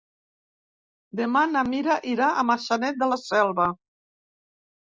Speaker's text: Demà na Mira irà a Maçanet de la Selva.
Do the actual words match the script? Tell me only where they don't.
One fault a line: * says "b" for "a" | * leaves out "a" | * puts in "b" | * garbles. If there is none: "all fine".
all fine